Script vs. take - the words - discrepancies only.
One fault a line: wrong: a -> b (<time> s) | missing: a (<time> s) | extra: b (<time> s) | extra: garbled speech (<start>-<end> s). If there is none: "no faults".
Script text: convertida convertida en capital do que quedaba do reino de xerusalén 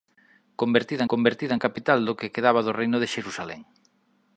no faults